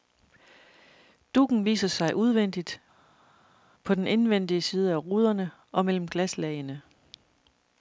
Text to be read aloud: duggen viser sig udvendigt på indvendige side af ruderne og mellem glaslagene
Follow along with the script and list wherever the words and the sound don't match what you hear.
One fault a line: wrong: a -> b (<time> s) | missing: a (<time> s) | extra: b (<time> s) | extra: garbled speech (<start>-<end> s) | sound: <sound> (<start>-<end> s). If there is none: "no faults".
extra: den (3.9 s)